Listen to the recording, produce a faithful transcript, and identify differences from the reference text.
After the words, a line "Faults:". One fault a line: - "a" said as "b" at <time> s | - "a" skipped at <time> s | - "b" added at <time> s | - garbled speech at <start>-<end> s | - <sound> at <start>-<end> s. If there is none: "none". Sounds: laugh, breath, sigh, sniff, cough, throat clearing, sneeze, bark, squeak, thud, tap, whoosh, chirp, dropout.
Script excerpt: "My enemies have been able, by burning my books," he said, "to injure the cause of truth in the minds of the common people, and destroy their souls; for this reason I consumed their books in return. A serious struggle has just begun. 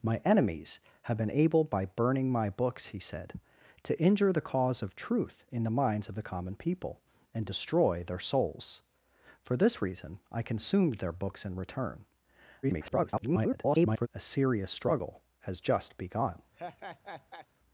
"My enemies have been able, by burning my books," he said, "to injure the cause of truth in the minds of the common people, and destroy their souls; for this reason I consumed their books in return. [garbled] A serious struggle has just begun.
Faults:
- garbled speech at 12.6-14.1 s
- laugh at 16.5-17.5 s